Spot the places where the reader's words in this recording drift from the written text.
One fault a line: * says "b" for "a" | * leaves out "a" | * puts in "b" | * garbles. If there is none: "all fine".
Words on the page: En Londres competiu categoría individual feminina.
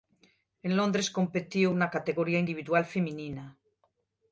* puts in "na"